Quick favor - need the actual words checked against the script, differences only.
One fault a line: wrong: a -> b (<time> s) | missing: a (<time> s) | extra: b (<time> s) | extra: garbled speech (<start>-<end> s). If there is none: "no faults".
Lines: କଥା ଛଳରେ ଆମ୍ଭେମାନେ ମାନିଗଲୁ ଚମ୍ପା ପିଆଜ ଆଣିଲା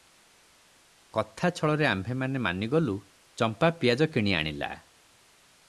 extra: କିଣି (4.1 s)